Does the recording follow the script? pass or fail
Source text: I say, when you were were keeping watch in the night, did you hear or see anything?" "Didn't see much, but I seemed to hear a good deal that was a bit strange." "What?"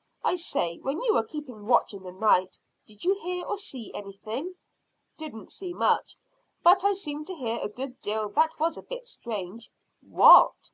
fail